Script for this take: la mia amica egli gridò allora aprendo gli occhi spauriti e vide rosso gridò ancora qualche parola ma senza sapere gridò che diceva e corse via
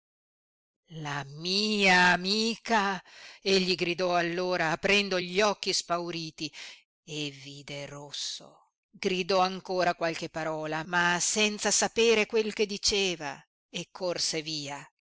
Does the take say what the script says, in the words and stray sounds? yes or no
no